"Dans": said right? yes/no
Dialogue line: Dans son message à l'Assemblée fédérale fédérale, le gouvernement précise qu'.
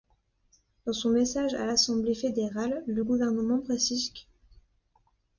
yes